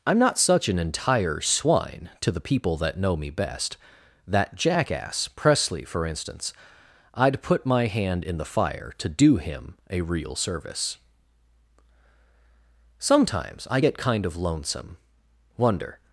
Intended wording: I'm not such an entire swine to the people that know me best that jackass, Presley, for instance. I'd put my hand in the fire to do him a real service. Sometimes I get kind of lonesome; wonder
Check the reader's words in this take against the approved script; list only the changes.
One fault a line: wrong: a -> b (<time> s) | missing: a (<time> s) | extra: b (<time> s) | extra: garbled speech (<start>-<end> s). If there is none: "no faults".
no faults